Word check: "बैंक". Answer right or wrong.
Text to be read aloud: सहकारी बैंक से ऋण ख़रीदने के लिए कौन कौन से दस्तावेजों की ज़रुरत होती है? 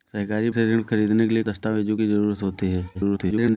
wrong